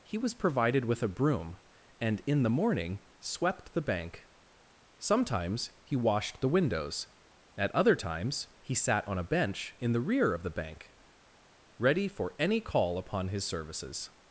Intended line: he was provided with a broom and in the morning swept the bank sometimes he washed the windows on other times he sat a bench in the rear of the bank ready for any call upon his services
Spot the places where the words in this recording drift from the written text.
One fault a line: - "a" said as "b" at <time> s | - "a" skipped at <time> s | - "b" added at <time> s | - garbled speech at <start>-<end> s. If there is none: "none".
- "on" said as "at" at 7.5 s
- "on" added at 9.1 s